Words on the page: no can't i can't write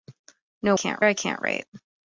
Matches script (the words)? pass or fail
pass